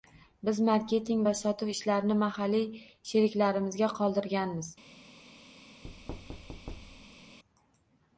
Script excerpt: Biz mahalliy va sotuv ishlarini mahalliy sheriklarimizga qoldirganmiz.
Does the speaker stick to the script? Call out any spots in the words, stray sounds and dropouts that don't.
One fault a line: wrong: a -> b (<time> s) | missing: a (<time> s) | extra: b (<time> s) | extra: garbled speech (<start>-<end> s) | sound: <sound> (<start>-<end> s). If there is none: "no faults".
wrong: mahalliy -> marketing (0.7 s)
sound: thud (5.8-7.4 s)